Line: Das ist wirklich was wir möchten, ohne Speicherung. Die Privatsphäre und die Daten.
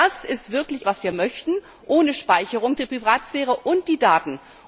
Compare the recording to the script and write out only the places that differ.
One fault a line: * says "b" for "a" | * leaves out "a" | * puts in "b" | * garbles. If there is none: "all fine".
all fine